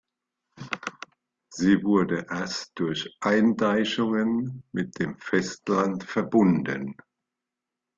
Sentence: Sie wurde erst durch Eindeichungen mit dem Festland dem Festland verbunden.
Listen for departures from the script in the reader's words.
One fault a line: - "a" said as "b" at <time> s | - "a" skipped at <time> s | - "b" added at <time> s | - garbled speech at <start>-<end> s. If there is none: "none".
- "dem Festland" skipped at 6.0 s